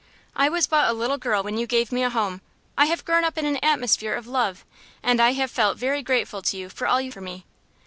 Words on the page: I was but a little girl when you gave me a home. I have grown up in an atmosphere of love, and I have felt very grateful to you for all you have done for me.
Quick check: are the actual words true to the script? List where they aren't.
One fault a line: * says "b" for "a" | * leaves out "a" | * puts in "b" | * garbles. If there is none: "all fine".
* leaves out "have done"